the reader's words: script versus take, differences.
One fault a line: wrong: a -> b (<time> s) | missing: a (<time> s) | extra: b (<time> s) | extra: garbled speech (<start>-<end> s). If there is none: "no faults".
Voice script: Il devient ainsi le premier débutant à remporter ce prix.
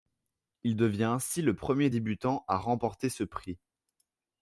no faults